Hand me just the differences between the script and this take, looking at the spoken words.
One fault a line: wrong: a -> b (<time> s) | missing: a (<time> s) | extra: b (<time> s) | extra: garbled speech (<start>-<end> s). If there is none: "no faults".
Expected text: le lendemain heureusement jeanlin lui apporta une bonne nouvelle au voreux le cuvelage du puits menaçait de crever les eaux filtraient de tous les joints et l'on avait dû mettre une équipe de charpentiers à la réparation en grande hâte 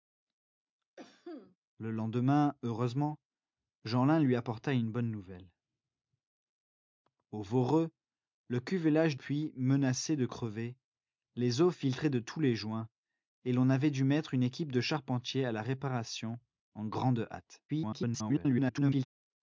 missing: du (9.1 s)
extra: garbled speech (17.7-19.0 s)